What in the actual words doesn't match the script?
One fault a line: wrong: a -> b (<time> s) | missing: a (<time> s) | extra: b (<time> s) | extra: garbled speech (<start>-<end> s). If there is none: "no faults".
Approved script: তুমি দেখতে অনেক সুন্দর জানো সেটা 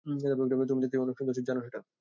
no faults